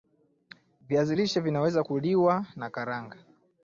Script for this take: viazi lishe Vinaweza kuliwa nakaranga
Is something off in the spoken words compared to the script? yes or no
no